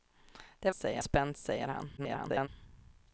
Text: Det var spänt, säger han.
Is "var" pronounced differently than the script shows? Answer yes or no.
yes